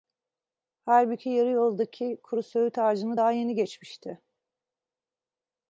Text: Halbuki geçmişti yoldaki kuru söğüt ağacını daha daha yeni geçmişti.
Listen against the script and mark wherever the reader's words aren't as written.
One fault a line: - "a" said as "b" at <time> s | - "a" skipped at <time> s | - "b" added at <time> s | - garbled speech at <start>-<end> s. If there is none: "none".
- "geçmişti" said as "yarı" at 1.3 s
- "daha" skipped at 3.3 s